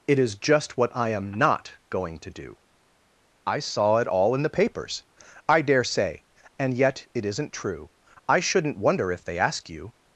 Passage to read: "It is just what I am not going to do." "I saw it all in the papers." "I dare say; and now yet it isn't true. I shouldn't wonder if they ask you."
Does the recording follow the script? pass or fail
fail